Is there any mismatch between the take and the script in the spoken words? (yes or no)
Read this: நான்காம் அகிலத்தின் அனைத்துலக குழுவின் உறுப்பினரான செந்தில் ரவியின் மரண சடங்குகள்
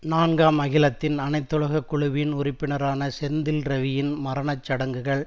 no